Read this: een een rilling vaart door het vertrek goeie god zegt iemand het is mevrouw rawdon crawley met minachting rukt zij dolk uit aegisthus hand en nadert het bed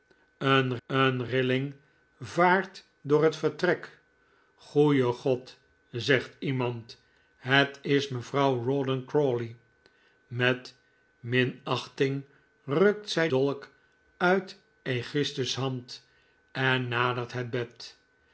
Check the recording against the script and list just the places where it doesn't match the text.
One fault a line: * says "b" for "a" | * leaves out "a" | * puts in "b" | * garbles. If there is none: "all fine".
all fine